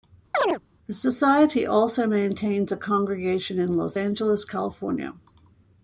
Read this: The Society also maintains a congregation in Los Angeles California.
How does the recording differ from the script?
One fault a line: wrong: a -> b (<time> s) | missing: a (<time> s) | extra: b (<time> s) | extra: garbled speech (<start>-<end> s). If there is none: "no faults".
no faults